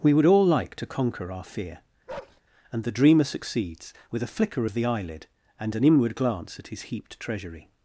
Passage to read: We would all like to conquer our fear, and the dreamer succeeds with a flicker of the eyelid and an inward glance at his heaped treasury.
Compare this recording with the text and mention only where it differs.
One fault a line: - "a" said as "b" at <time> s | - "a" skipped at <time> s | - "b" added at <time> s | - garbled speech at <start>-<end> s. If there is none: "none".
none